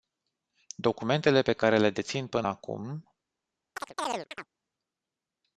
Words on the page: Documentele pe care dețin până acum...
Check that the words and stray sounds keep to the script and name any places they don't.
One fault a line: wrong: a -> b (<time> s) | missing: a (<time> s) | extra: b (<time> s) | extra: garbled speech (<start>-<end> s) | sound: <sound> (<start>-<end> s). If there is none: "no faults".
extra: le (1.8 s)
sound: chirp (3.8-4.5 s)